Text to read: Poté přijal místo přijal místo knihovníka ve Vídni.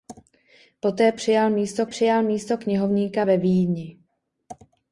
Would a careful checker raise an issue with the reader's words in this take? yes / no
no